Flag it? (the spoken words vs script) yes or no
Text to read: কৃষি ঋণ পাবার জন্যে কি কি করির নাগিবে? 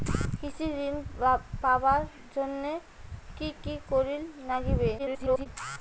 yes